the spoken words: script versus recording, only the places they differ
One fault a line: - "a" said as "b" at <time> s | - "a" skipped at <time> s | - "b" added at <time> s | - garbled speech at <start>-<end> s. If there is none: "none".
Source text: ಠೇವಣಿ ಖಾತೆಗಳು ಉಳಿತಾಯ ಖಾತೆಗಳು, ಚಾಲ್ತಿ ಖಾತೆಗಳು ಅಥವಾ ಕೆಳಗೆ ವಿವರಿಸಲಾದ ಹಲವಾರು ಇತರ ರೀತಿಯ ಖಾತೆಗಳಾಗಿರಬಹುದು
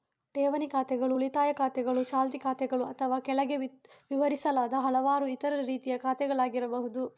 none